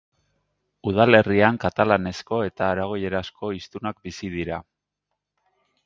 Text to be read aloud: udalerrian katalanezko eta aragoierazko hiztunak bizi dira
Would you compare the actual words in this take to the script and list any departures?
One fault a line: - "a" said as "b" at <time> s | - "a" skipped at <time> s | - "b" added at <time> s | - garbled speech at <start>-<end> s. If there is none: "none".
none